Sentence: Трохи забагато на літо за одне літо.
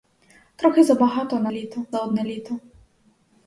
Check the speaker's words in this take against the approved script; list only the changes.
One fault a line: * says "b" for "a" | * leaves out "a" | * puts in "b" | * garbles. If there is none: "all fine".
all fine